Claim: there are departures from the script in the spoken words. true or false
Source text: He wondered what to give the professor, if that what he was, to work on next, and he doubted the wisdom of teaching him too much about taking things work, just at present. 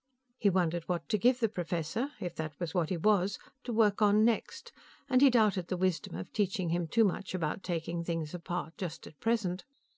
true